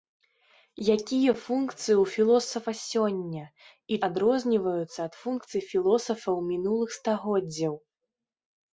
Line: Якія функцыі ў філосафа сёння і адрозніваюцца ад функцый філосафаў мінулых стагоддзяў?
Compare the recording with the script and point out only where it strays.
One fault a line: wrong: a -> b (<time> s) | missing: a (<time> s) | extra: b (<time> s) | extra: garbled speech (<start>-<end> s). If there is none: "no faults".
no faults